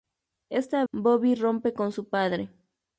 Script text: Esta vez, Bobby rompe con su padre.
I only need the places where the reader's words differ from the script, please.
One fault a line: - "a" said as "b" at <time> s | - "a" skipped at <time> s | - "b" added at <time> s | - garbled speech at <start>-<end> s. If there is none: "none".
- "vez" skipped at 0.8 s